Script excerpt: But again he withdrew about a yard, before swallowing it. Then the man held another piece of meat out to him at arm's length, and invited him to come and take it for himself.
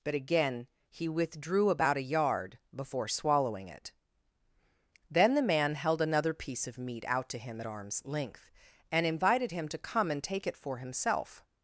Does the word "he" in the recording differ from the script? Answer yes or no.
no